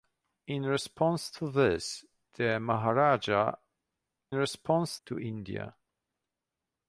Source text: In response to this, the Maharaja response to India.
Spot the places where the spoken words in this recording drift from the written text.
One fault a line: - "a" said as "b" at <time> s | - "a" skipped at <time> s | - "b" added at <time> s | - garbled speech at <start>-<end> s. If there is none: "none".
none